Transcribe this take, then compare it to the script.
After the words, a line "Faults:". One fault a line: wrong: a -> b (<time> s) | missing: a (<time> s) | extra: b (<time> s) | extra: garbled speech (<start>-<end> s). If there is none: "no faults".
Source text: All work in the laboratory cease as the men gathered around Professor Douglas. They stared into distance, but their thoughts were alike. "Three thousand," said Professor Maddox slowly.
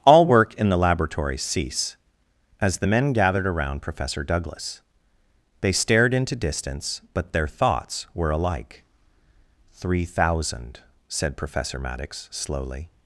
All work in the laboratory cease as the men gathered around Professor Douglas. They stared into distance, but their thoughts were alike. "Three thousand," said Professor Maddox slowly.
Faults:
no faults